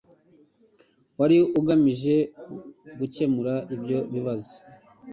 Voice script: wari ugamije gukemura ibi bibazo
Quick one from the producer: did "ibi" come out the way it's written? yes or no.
no